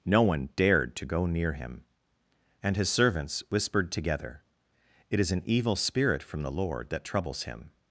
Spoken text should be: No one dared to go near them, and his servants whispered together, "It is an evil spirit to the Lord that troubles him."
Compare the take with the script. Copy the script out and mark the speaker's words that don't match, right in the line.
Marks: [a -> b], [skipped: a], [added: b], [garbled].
No one dared to go near [them, -> him] and his servants whispered together, "It is an evil spirit [to -> from] the Lord that troubles him."